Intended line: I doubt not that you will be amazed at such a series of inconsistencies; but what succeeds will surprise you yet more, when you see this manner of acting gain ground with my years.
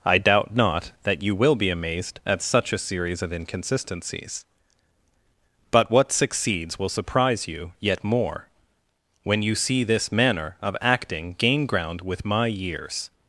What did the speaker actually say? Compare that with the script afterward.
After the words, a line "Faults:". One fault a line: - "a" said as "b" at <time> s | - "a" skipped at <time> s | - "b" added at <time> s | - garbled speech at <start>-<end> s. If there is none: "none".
I doubt not that you will be amazed at such a series of inconsistencies; but what succeeds will surprise you yet more, when you see this manner of acting gain ground with my years.
Faults:
none